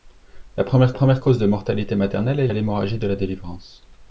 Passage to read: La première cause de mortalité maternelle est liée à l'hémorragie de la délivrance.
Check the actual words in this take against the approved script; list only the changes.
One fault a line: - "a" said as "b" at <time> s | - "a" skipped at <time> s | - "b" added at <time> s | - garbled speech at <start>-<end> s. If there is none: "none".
- "première" added at 0.9 s
- "liée" skipped at 2.5 s